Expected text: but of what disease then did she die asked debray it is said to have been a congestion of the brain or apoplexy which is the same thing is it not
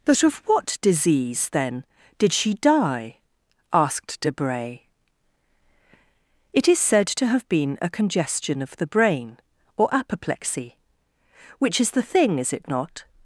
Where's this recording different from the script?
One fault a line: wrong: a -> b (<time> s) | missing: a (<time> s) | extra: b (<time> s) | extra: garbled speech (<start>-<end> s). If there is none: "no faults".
missing: same (12.0 s)